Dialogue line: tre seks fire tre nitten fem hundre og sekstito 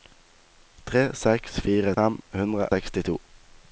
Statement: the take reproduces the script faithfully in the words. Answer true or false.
false